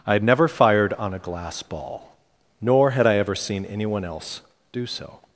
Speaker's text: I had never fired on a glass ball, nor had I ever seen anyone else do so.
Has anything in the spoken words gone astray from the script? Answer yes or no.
no